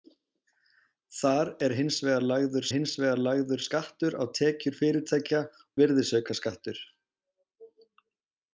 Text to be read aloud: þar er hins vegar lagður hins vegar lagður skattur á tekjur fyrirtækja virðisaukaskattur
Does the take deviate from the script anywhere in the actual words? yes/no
no